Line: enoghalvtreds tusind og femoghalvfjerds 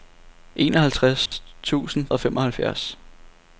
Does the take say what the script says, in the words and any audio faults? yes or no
no